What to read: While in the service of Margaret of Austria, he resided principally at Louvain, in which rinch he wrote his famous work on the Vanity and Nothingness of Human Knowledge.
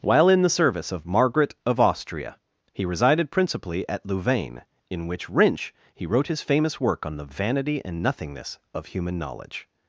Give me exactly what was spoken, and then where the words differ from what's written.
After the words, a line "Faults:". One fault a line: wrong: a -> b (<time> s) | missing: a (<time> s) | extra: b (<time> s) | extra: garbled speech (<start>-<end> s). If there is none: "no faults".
While in the service of Margaret of Austria, he resided principally at Louvain, in which rinch he wrote his famous work on the Vanity and Nothingness of Human Knowledge.
Faults:
no faults